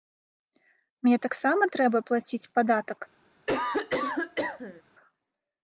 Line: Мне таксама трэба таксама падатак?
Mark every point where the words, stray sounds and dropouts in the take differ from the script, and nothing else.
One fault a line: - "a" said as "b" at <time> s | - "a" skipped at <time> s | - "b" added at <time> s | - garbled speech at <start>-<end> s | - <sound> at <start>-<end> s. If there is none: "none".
- "таксама" said as "плаціць" at 2.1 s
- cough at 3.5-4.8 s